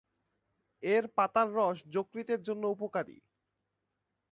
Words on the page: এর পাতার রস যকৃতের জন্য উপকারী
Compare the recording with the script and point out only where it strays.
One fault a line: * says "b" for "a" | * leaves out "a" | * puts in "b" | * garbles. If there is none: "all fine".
all fine